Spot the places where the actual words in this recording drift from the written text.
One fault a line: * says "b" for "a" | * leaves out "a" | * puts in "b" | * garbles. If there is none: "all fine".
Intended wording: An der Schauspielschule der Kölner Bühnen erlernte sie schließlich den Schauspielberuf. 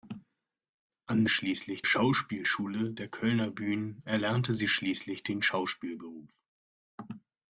* says "schließlich" for "der"